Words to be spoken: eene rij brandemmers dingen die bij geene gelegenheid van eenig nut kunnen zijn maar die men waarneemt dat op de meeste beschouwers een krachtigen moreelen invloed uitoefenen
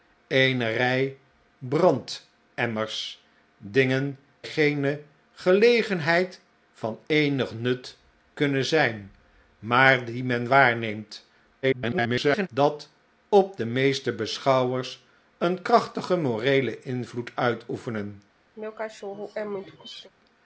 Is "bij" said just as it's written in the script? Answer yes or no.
no